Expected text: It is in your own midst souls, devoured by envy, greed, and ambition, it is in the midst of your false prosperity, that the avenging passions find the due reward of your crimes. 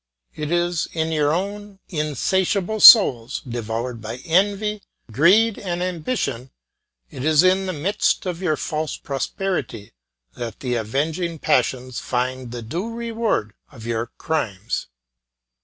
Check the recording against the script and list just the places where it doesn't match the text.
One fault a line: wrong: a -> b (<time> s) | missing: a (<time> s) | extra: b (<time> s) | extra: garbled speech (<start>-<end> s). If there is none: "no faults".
wrong: midst -> insatiable (1.9 s)